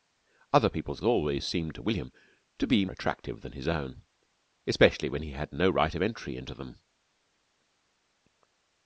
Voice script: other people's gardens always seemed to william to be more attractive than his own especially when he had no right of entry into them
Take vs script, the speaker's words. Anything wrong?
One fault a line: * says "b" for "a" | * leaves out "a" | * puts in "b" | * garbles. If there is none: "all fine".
* leaves out "gardens"
* leaves out "more"